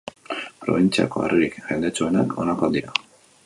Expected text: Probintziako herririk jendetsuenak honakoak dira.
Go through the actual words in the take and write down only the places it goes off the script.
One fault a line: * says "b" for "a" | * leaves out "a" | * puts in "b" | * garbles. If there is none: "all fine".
all fine